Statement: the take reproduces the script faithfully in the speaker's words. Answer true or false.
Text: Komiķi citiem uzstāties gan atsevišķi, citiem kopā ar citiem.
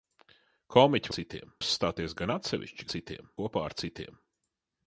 true